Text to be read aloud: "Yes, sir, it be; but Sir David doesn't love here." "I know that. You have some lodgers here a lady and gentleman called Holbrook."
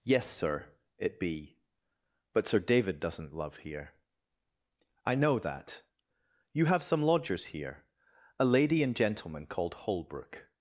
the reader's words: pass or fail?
pass